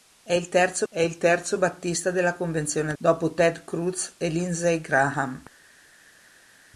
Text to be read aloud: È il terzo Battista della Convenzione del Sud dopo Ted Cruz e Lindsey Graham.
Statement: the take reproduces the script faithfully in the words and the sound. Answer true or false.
false